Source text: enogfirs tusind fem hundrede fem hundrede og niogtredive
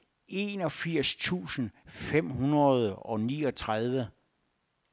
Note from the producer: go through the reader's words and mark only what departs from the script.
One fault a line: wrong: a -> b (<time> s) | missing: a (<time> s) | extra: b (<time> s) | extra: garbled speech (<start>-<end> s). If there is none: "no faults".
missing: fem hundrede (3.0 s)